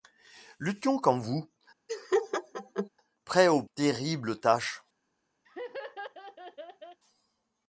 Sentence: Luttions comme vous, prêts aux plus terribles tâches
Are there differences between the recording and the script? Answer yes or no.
yes